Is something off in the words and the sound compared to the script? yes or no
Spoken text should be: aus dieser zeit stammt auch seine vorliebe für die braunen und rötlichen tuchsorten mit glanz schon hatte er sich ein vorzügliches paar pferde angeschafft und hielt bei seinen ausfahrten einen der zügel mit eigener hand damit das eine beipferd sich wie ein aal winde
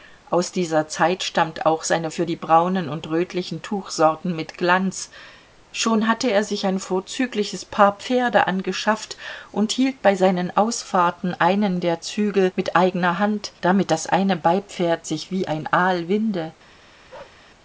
yes